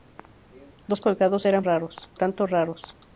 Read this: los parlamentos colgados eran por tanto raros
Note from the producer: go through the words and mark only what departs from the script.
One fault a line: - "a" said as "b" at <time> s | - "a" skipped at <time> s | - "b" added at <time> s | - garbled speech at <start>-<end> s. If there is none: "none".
- "parlamentos" skipped at 1.0 s
- "por" said as "raros" at 1.6 s